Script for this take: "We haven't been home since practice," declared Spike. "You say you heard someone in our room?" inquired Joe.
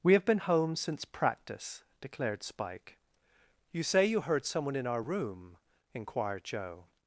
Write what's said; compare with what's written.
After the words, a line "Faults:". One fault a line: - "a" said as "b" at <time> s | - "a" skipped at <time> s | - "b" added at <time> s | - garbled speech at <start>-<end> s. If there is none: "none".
"We have been home since practice," declared Spike. "You say you heard someone in our room?" inquired Joe.
Faults:
- "haven't" said as "have" at 0.1 s